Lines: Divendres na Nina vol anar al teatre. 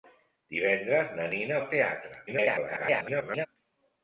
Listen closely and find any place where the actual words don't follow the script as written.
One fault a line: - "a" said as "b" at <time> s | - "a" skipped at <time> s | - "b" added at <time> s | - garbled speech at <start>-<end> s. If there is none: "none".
- "vol anar" skipped at 1.6 s
- garbled speech at 2.3-3.5 s